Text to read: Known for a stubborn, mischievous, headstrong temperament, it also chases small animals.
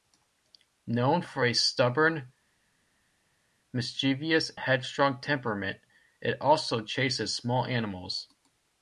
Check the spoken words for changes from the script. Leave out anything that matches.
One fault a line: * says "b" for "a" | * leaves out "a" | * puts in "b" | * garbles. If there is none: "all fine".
all fine